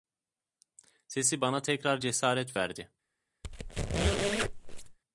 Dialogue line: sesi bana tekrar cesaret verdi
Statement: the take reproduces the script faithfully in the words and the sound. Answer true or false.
false